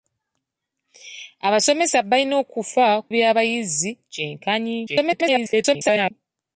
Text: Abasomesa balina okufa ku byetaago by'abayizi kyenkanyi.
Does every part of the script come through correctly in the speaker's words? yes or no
no